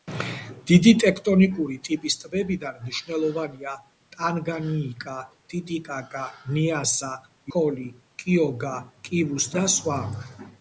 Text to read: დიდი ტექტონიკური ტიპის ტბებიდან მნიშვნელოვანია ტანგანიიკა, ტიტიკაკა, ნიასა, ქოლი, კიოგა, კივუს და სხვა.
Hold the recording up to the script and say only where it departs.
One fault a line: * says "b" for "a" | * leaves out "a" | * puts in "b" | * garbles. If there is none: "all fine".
all fine